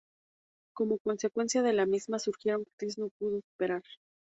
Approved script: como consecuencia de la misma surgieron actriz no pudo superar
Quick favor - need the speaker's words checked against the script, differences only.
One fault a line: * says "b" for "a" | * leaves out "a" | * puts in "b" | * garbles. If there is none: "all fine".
all fine